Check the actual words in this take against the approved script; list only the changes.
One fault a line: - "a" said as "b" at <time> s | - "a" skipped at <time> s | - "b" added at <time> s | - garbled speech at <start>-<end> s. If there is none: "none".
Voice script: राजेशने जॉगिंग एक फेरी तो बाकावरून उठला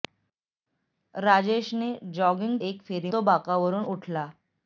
none